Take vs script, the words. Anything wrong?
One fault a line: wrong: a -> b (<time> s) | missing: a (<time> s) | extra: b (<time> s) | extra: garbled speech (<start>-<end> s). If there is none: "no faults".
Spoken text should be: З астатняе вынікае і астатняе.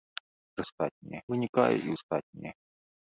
no faults